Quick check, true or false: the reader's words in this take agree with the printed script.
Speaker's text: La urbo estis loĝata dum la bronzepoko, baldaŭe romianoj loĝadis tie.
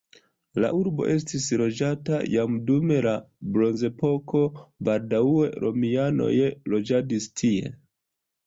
false